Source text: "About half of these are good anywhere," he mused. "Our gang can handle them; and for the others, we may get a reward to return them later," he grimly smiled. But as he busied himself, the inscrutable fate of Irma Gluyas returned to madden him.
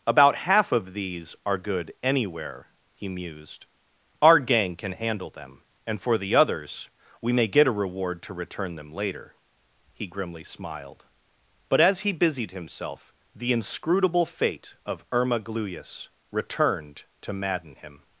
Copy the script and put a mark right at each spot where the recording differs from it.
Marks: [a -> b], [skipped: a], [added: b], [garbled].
"About half of these are good anywhere," he mused. "Our gang can handle them; and for the others, we may get a reward to return them later," he grimly smiled. But as he busied himself, the inscrutable fate of Irma Gluyas returned to madden him.